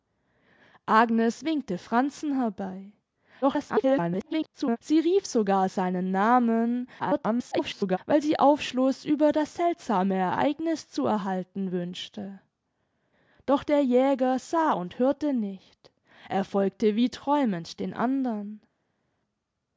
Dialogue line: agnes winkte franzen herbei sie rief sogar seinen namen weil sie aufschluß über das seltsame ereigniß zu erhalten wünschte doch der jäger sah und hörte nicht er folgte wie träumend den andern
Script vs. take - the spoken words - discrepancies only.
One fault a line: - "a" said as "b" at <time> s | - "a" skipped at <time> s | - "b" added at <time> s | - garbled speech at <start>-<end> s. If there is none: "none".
- garbled speech at 3.4-4.8 s
- garbled speech at 7.0-8.0 s